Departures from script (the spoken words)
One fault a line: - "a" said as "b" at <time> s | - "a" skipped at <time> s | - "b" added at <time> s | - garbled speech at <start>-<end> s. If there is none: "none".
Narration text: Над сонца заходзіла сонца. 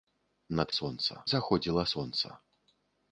none